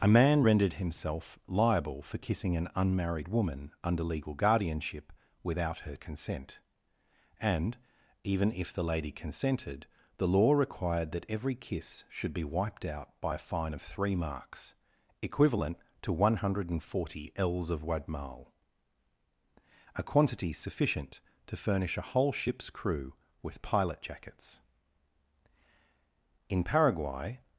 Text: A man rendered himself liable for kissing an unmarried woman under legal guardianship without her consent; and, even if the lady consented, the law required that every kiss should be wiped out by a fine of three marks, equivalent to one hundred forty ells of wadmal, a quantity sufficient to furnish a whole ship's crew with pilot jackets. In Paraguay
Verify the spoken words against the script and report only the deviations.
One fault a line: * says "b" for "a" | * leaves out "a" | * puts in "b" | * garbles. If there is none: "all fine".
all fine